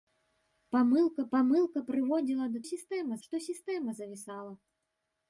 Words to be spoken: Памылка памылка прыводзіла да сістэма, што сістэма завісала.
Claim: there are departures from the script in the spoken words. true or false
false